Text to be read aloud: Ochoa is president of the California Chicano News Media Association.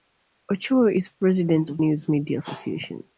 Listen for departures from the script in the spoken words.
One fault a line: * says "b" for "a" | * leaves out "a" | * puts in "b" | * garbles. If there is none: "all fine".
* leaves out "the California Chicano"